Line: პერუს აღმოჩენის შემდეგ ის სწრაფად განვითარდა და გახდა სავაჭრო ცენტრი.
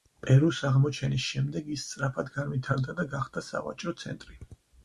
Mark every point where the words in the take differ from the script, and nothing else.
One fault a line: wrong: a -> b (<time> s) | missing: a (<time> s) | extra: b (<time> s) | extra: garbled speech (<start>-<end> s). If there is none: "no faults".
no faults